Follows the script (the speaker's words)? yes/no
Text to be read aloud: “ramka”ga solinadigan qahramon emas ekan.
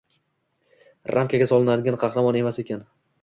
yes